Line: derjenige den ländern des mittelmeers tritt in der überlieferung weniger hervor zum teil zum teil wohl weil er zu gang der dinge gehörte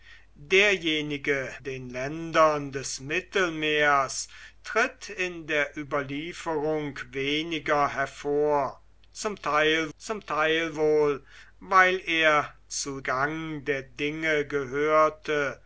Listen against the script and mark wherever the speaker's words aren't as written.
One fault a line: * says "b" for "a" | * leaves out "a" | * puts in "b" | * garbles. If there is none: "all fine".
all fine